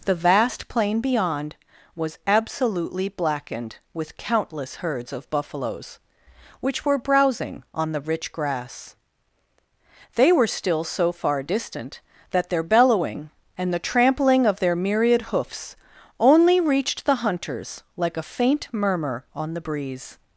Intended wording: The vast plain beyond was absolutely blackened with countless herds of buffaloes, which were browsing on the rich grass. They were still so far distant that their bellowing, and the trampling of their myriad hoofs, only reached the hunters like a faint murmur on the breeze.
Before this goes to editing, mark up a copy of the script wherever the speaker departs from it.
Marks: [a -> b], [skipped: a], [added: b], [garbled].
The vast plain beyond was absolutely blackened with countless herds of buffaloes, which were browsing on the rich grass. They were still so far distant that their bellowing, and the trampling of their myriad hoofs, only reached the hunters like a faint murmur on the breeze.